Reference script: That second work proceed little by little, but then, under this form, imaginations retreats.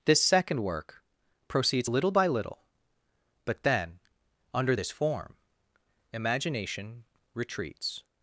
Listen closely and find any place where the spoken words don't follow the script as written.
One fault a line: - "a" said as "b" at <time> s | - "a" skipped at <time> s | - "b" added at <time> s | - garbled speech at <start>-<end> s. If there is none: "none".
- "That" said as "This" at 0.1 s
- "proceed" said as "proceeds" at 1.5 s
- "imaginations" said as "imagination" at 6.1 s